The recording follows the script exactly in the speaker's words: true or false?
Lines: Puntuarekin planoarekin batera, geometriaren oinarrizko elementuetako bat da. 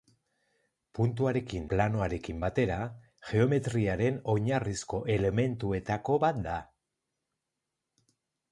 true